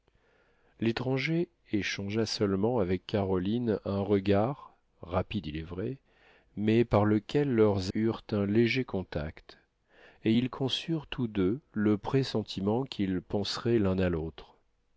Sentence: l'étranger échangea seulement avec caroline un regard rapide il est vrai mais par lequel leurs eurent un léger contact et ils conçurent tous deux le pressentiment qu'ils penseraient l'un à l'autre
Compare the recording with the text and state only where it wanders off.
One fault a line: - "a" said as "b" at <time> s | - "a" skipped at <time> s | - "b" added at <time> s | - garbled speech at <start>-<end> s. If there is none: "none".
none